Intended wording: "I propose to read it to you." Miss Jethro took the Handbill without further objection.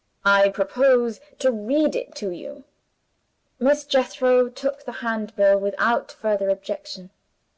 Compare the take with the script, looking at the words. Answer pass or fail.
pass